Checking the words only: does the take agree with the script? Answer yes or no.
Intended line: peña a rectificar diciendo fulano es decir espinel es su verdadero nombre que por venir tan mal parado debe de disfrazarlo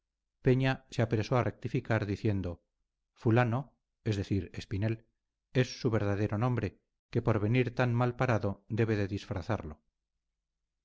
no